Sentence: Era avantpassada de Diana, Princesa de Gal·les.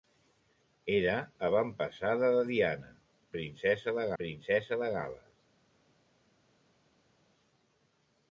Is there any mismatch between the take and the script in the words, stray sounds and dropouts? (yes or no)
yes